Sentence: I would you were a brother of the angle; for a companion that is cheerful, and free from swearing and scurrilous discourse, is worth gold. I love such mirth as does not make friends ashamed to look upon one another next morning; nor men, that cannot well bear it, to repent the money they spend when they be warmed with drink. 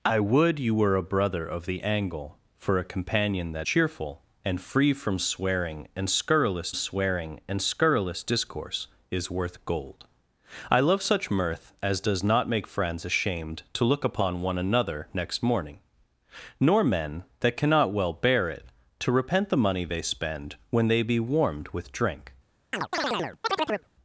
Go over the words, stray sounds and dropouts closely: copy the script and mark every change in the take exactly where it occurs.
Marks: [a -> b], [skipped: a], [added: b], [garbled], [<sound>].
I would you were a brother of the angle; for a companion that [skipped: is] cheerful, and free from swearing and scurrilous [added: swearing and scurrilous] discourse, is worth gold. I love such mirth as does not make friends ashamed to look upon one another next morning; nor men, that cannot well bear it, to repent the money they spend when they be warmed with drink. [chirp]